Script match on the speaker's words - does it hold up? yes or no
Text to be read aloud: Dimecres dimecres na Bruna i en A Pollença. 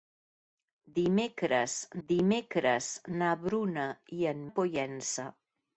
yes